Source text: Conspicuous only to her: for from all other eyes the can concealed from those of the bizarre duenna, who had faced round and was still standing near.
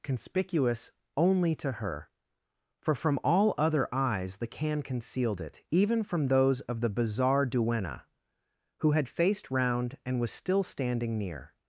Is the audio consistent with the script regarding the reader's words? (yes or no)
no